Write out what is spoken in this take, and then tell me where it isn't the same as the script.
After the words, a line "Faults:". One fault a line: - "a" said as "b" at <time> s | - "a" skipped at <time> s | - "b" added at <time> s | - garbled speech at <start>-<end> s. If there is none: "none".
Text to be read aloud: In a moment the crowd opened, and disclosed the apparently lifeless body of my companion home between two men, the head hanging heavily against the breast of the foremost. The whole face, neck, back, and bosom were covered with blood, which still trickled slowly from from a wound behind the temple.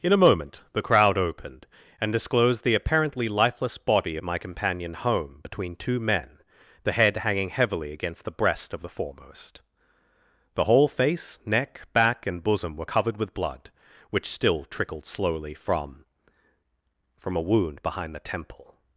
In a moment the crowd opened, and disclosed the apparently lifeless body of my companion home between two men, the head hanging heavily against the breast of the foremost. The whole face, neck, back, and bosom were covered with blood, which still trickled slowly from from a wound behind the temple.
Faults:
none